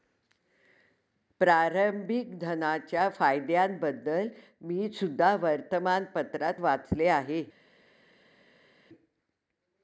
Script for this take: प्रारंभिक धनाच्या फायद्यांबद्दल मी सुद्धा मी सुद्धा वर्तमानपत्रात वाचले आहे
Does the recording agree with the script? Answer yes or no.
no